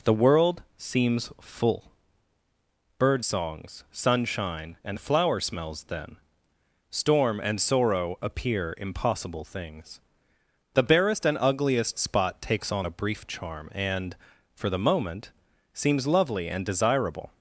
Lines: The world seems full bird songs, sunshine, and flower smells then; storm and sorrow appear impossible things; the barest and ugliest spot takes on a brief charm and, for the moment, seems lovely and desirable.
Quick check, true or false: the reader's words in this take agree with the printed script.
true